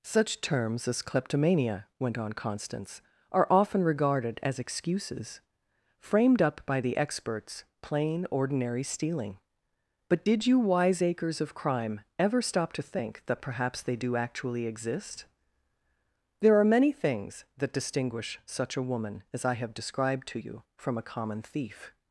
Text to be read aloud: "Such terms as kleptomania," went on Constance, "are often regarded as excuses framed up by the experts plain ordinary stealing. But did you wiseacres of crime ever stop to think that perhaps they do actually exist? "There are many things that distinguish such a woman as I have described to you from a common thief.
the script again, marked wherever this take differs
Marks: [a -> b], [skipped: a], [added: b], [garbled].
"Such terms as kleptomania," went on Constance, "are often regarded as excuses framed up by the experts plain ordinary stealing. But did you wiseacres of crime ever stop to think that perhaps they do actually exist? "There are many things that distinguish such a woman as I have described to you from a common thief.